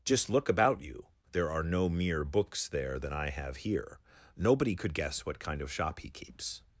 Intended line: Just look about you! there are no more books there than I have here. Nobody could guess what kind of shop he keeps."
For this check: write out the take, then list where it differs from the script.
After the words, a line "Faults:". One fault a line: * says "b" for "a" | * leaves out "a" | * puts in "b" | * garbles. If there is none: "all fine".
Just look about you! there are no mere books there than I have here. Nobody could guess what kind of shop he keeps."
Faults:
* says "mere" for "more"